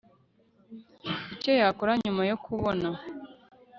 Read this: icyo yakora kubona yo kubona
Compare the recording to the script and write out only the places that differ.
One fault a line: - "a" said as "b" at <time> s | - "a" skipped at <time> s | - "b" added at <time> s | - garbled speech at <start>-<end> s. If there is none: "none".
- "kubona" said as "nyuma" at 2.0 s